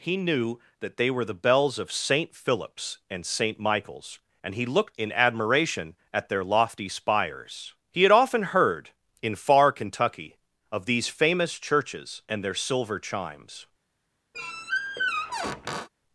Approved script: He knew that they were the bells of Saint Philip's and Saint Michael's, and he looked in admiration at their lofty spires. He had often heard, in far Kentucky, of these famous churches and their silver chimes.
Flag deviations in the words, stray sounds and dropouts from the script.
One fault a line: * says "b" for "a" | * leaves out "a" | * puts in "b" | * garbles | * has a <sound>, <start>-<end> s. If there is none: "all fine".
* has a squeak, 14.3-15.9 s